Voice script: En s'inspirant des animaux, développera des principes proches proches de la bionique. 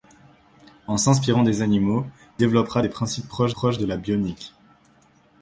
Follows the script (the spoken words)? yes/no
yes